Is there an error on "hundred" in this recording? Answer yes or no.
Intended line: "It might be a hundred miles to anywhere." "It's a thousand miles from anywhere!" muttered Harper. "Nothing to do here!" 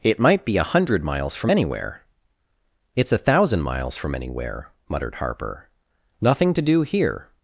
no